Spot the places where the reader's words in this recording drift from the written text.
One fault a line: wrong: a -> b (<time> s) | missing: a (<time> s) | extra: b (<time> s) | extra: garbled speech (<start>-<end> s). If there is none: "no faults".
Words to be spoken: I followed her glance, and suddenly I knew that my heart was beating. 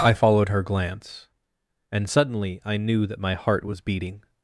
no faults